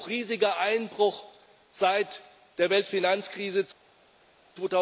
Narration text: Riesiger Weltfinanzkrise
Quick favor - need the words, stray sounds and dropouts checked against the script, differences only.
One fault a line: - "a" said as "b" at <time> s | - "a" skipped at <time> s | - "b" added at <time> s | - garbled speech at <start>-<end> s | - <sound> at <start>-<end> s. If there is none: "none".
- "Einbruch seit der" added at 0.6 s